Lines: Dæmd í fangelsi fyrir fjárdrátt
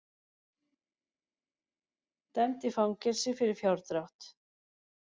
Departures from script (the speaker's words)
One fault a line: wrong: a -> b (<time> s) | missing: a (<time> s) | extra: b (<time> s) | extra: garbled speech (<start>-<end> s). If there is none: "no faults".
no faults